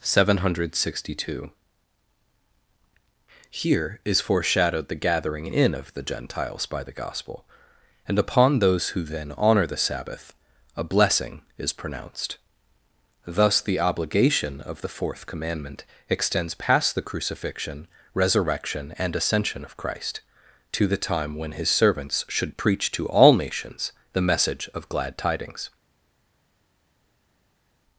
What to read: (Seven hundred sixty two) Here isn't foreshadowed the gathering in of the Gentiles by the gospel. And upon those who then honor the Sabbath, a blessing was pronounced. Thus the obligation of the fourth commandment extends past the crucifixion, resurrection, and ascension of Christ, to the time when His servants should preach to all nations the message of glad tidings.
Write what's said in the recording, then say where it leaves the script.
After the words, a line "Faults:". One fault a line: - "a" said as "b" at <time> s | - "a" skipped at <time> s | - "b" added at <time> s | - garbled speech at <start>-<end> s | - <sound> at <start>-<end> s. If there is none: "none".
(Seven hundred sixty two) Here is foreshadowed the gathering in of the Gentiles by the gospel. And upon those who then honor the Sabbath, a blessing is pronounced. Thus the obligation of the fourth commandment extends past the crucifixion, resurrection, and ascension of Christ, to the time when His servants should preach to all nations the message of glad tidings.
Faults:
- "isn't" said as "is" at 4.0 s
- "was" said as "is" at 11.6 s